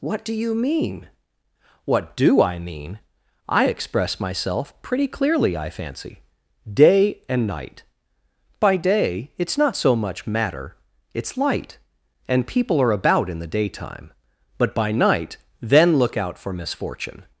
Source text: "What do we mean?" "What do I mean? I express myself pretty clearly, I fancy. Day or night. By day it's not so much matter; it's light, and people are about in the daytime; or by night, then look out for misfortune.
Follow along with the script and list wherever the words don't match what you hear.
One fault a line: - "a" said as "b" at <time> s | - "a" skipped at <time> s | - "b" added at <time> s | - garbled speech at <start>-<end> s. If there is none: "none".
- "we" said as "you" at 0.3 s
- "or" said as "and" at 7.3 s
- "or" said as "but" at 14.6 s